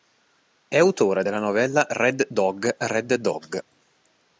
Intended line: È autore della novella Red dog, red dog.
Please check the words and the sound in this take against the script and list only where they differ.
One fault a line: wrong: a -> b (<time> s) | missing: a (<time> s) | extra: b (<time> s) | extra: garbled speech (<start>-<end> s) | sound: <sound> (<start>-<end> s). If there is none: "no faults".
no faults